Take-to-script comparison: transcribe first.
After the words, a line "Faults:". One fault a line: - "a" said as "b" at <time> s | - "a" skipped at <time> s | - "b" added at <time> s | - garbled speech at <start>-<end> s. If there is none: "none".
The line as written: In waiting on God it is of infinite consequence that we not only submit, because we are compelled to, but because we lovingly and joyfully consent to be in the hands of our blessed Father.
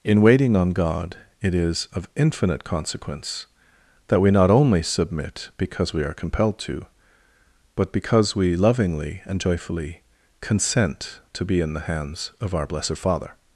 In waiting on God it is of infinite consequence that we not only submit, because we are compelled to, but because we lovingly and joyfully consent to be in the hands of our blessed Father.
Faults:
none